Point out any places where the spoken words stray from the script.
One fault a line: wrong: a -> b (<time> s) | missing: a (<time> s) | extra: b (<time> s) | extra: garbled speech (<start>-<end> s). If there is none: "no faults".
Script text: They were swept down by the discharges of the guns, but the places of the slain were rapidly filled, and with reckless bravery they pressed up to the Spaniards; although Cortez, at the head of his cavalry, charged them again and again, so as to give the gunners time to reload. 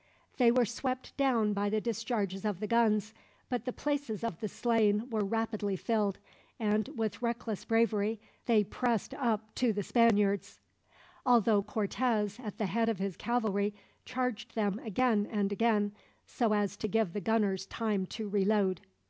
no faults